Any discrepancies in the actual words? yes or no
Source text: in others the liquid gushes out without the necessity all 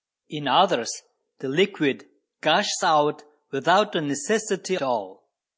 no